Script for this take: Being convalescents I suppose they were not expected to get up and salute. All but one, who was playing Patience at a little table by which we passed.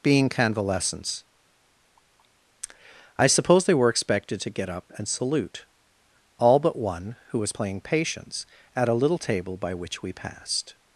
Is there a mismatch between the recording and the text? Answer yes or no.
yes